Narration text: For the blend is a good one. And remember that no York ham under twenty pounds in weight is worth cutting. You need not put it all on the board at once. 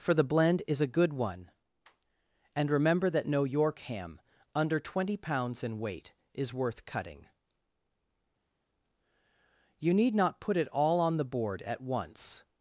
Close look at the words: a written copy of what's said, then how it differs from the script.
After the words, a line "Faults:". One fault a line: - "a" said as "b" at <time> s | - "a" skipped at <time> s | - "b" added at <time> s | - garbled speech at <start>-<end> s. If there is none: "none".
For the blend is a good one. And remember that no York ham under twenty pounds in weight is worth cutting. You need not put it all on the board at once.
Faults:
none